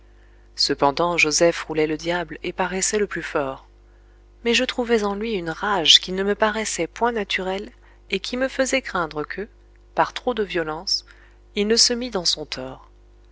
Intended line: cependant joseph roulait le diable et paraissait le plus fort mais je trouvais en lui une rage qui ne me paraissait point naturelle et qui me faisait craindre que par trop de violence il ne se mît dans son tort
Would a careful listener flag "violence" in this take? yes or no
no